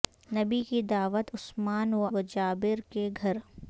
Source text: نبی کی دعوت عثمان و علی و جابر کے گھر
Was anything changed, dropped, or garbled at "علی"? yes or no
yes